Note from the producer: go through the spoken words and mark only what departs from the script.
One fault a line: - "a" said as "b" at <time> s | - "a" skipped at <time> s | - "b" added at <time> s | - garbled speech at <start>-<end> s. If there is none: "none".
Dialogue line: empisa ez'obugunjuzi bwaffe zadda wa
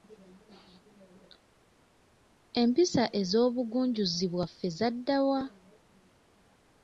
none